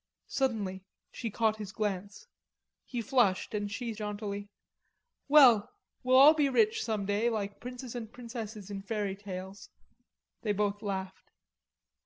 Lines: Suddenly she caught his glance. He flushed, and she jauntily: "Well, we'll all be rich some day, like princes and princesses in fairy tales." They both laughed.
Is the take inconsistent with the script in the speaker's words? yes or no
no